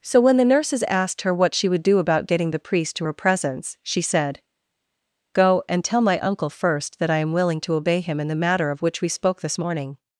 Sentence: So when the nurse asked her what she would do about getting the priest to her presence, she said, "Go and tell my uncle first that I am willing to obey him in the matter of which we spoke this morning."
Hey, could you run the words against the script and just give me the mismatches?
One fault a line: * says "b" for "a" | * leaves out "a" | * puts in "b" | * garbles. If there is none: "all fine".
* says "nurses" for "nurse"